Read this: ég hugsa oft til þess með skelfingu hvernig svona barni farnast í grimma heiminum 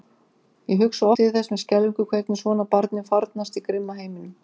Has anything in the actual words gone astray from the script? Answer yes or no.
yes